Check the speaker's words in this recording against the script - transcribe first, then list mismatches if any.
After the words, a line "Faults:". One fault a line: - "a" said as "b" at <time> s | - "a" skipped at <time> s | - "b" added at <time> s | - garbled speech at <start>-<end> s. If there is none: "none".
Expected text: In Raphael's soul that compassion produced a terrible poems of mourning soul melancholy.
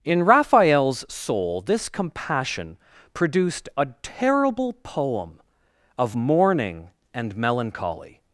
In Raphael's soul this compassion produced a terrible poem of mourning and melancholy.
Faults:
- "that" said as "this" at 1.6 s
- "poems" said as "poem" at 4.7 s
- "soul" said as "and" at 7.1 s